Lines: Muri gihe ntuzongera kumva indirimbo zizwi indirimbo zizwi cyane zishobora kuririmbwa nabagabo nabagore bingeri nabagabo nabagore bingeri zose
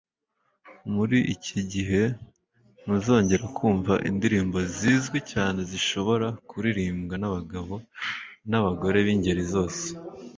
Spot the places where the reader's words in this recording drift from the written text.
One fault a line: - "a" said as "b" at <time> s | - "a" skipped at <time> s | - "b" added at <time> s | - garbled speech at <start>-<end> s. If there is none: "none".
- "iki" added at 1.3 s
- "indirimbo zizwi" skipped at 5.2 s
- "nabagabo nabagore bingeri" skipped at 9.4 s